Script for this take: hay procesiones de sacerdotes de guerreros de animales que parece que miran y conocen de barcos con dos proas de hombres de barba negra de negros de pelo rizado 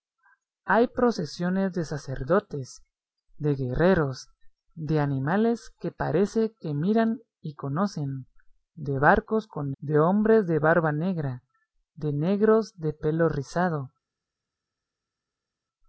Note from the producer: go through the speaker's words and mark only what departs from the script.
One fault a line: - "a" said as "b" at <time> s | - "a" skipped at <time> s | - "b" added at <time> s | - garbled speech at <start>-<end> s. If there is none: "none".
- "dos proas" skipped at 9.7 s